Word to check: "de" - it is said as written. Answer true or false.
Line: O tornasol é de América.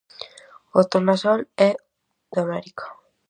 true